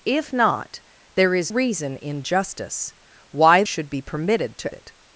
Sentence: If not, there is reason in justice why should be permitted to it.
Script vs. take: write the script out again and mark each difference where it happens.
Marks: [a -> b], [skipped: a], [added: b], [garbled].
If not, there is reason in justice why should be permitted to it.